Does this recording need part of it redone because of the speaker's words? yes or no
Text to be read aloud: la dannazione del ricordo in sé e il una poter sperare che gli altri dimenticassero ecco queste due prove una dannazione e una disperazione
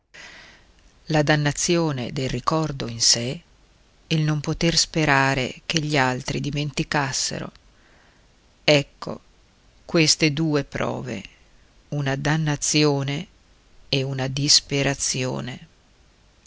yes